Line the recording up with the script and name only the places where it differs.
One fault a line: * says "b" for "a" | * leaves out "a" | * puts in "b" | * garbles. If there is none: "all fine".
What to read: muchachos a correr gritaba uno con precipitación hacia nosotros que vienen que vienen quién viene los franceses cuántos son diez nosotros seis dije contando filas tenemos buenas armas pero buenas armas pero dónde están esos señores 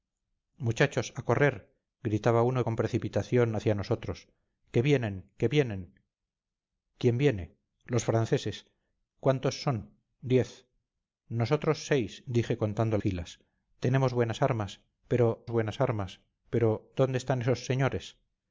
all fine